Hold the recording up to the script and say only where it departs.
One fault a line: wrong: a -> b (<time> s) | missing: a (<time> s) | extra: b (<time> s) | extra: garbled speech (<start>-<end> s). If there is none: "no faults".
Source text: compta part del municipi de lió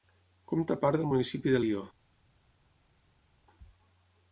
no faults